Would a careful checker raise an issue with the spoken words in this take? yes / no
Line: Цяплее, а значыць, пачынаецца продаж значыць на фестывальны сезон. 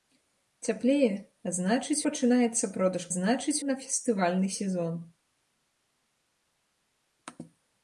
no